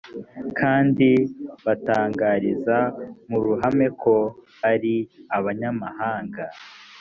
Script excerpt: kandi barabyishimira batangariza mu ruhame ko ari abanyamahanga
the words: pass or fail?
fail